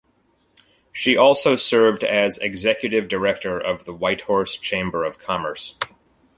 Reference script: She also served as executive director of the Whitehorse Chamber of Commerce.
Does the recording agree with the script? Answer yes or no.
yes